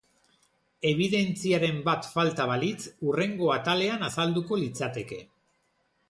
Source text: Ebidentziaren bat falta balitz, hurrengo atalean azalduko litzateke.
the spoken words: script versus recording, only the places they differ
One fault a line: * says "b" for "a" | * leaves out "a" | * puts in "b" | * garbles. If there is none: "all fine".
all fine